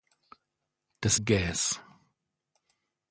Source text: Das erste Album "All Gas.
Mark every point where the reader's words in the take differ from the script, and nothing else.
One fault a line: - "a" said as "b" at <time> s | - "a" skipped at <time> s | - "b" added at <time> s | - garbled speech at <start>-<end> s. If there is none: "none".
- "erste Album All" skipped at 1.2 s